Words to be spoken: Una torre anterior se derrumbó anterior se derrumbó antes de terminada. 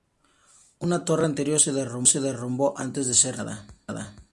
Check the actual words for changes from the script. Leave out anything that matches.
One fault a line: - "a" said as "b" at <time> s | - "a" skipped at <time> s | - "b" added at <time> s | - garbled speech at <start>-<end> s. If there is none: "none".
- "anterior se derrumbó" skipped at 2.7 s
- "ser" added at 3.1 s